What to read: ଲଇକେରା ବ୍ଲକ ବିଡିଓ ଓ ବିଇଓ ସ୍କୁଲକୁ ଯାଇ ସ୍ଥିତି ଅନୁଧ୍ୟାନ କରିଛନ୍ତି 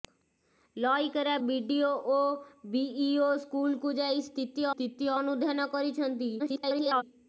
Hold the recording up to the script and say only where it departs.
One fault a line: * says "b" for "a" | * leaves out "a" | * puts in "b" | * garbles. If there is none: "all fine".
* leaves out "ବ୍ଲକ"
* puts in "ସ୍ଥିତି"
* garbles